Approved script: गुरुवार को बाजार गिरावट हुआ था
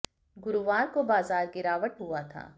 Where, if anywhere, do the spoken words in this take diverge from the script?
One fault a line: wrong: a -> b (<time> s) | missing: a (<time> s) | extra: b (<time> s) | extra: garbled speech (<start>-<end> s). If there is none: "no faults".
no faults